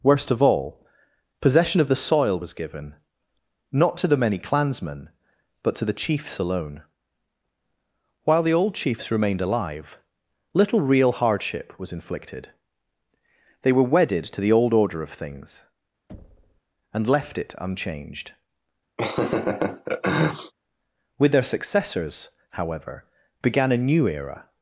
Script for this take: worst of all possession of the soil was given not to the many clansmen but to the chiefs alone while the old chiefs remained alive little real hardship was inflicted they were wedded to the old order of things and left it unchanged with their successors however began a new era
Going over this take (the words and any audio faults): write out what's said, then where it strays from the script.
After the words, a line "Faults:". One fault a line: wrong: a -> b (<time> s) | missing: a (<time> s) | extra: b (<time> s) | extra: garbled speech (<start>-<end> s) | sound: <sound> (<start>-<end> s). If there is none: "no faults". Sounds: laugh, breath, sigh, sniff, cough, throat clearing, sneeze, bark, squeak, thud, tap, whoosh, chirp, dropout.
worst of all possession of the soil was given not to the many clansmen but to the chiefs alone while the old chiefs remained alive little real hardship was inflicted they were wedded to the old order of things and left it unchanged with their successors however began a new era
Faults:
sound: thud (16.1-16.6 s)
sound: laugh (19.0-20.5 s)